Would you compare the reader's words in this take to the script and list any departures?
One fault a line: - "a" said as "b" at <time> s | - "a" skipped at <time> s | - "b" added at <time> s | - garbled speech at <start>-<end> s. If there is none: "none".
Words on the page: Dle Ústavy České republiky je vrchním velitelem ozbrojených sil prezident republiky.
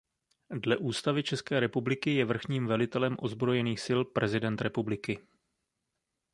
none